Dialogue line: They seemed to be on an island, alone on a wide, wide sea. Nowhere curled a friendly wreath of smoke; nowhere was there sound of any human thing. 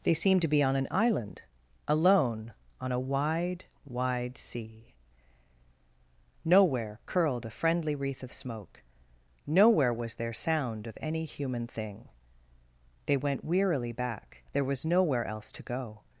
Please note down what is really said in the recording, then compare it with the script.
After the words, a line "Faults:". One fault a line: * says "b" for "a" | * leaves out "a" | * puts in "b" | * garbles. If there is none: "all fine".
They seemed to be on an island, alone on a wide, wide sea. Nowhere curled a friendly wreath of smoke; nowhere was there sound of any human thing. They went wearily back. There was nowhere else to go
Faults:
* puts in "They went wearily back There was nowhere else to go"